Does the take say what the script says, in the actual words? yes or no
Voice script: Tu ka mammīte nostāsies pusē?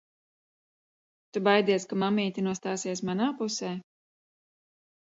no